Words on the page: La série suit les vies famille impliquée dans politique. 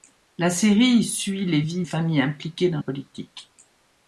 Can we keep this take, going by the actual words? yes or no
yes